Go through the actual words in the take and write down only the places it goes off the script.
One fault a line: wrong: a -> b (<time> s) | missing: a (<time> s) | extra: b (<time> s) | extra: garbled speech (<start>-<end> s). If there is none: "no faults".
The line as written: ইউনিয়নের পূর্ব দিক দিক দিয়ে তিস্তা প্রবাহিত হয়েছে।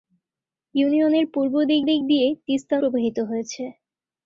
no faults